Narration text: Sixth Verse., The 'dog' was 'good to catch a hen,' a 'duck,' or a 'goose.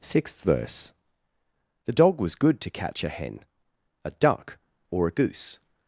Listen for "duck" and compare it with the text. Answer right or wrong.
right